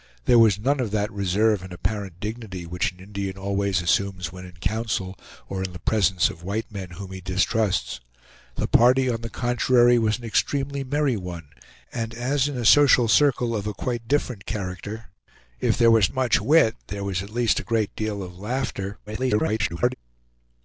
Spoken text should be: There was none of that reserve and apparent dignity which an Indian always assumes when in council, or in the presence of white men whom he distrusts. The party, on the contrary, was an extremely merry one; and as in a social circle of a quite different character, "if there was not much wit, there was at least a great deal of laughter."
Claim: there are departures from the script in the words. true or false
true